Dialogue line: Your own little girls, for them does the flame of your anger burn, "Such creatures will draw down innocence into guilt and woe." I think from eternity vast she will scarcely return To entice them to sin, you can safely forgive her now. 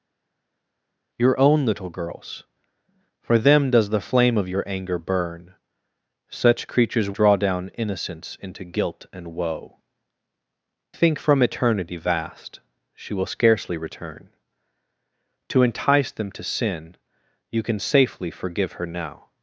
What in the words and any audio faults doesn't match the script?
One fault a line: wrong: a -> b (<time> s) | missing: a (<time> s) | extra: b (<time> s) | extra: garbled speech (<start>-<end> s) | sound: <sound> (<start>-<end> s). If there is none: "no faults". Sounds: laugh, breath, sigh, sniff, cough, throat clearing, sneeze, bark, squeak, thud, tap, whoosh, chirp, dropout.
missing: will (7.1 s)
missing: I (9.8 s)